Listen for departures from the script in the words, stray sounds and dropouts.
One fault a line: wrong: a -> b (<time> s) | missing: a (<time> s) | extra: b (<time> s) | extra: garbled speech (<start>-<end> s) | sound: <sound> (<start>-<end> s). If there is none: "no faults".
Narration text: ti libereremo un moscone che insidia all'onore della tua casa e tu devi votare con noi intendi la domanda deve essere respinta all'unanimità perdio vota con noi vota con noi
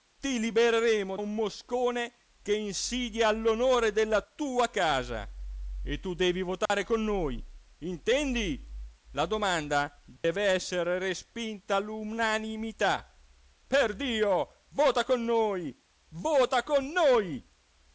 sound: dropout (6.7-6.7 s)
sound: dropout (10.2-10.2 s)